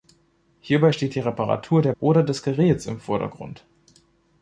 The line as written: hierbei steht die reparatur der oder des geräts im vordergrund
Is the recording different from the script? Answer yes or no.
no